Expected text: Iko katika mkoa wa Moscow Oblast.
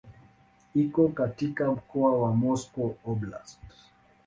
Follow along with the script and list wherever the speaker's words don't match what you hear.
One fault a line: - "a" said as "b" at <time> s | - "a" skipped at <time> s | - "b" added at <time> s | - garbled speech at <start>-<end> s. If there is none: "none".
none